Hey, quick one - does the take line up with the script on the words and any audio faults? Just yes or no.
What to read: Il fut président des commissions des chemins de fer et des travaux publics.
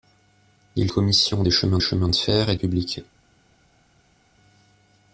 no